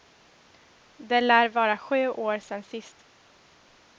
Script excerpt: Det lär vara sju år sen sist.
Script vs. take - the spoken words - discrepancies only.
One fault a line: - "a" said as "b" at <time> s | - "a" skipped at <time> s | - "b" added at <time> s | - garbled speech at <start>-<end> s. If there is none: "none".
none